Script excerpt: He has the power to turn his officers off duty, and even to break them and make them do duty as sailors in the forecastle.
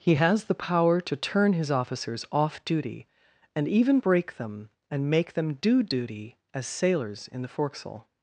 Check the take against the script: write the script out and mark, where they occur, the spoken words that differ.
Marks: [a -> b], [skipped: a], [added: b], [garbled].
He has the power to turn his officers off duty, and even [skipped: to] break them and make them do duty as sailors in the forecastle.